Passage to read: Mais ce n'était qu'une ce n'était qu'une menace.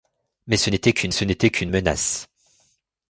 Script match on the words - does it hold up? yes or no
yes